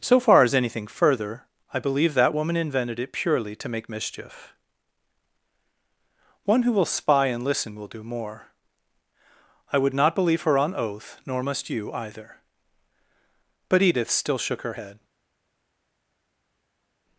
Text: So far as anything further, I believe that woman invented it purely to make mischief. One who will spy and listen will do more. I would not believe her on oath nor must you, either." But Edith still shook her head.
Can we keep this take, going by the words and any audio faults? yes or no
yes